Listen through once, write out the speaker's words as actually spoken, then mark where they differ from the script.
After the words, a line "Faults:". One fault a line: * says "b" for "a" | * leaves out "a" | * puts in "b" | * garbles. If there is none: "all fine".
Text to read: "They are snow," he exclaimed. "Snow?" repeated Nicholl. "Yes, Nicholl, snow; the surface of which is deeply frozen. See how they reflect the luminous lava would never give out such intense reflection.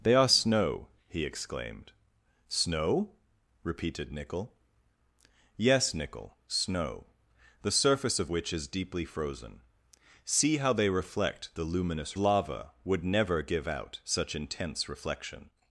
"They are snow," he exclaimed. "Snow?" repeated Nicholl. "Yes, Nicholl, snow; the surface of which is deeply frozen. See how they reflect the luminous lava would never give out such intense reflection.
Faults:
all fine